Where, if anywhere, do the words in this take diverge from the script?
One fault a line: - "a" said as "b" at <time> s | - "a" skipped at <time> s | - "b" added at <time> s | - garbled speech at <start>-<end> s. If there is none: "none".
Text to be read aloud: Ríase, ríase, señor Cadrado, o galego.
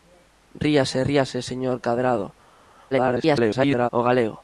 - garbled speech at 2.9-3.9 s